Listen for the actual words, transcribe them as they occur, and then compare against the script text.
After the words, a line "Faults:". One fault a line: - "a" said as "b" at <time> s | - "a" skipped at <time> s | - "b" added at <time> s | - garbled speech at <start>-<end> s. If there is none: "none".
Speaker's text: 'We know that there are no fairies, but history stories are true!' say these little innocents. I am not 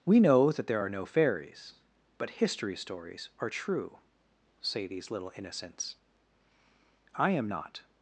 'We know that there are no fairies, but history stories are true!' say these little innocents. I am not
Faults:
none